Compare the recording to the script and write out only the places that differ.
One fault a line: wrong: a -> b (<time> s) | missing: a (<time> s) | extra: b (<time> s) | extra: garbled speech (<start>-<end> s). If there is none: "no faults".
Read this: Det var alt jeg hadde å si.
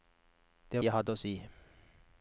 missing: var alt (0.8 s)